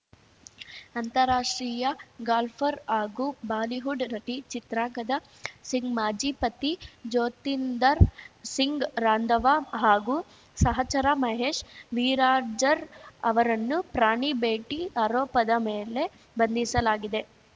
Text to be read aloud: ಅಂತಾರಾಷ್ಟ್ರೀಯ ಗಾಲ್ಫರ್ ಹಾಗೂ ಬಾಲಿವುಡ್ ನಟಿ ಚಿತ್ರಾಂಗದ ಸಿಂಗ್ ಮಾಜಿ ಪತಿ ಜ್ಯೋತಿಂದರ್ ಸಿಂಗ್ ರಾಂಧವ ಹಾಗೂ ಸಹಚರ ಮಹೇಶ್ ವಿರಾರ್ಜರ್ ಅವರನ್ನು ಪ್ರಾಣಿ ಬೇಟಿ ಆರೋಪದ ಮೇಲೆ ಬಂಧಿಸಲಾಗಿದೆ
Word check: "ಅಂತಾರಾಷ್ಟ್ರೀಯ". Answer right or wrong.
right